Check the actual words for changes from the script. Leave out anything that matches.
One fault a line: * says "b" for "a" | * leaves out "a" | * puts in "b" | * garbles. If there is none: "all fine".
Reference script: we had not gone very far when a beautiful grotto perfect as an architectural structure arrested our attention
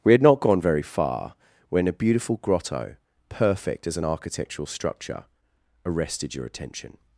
* says "your" for "our"